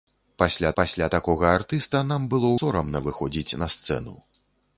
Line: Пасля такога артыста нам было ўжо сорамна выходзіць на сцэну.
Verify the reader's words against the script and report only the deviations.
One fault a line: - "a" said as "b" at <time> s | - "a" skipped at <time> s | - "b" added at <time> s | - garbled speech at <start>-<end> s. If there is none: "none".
- "пасля" added at 0.8 s
- "ўжо" skipped at 2.5 s